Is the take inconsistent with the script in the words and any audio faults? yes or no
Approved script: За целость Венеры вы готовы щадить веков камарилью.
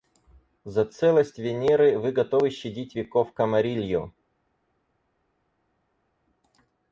no